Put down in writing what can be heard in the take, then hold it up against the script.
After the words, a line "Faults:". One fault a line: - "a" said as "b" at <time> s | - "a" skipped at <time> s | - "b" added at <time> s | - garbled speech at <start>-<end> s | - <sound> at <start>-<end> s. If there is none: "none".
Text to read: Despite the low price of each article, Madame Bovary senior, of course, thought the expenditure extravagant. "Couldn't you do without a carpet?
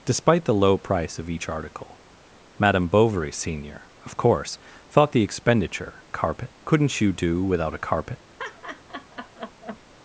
Despite the low price of each article, Madame Bovary senior, of course, thought the expenditure carpet. "Couldn't you do without a carpet?
Faults:
- "extravagant" said as "carpet" at 6.1 s
- laugh at 8.4-9.8 s